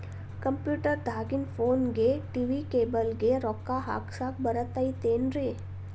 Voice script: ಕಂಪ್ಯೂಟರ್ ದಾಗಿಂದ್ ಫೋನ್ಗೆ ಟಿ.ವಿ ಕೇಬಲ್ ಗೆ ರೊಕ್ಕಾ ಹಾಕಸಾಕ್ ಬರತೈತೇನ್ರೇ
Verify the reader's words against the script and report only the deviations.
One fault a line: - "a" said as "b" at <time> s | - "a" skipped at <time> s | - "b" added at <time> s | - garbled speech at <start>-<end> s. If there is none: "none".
none